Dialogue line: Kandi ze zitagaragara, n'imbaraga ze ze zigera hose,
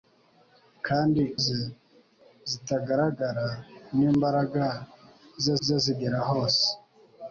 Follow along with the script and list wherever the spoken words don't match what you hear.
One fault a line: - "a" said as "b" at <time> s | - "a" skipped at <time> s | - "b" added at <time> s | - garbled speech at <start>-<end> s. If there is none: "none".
none